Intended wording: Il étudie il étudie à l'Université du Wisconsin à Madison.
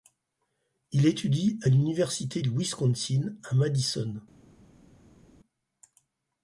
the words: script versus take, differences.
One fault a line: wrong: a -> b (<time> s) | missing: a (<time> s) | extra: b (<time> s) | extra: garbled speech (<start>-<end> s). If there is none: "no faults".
missing: il étudie (1.6 s)